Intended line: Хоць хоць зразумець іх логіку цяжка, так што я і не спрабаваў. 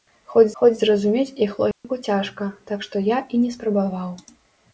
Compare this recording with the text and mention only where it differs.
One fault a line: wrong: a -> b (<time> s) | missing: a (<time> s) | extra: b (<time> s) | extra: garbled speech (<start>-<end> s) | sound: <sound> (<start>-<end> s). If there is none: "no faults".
sound: dropout (1.7-1.8 s)